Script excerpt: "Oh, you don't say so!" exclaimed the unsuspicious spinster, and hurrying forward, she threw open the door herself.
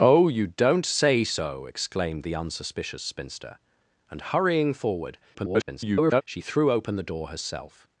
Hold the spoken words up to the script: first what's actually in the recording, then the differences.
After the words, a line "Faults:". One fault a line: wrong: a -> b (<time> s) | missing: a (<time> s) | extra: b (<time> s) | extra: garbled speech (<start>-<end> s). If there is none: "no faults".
"Oh, you don't say so!" exclaimed the unsuspicious spinster, and hurrying forward, [garbled] she threw open the door herself.
Faults:
extra: garbled speech (5.3-6.2 s)